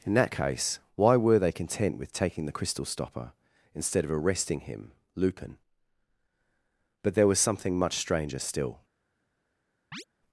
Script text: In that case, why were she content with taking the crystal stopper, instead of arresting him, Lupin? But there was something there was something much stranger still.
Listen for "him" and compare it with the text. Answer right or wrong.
right